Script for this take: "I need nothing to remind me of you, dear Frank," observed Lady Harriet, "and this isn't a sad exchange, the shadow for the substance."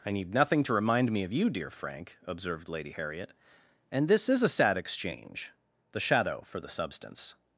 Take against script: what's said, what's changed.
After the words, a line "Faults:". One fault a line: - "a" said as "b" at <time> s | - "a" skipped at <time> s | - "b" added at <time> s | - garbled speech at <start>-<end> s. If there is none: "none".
"I need nothing to remind me of you, dear Frank," observed Lady Harriet, "and this is a sad exchange, the shadow for the substance."
Faults:
- "isn't" said as "is" at 4.3 s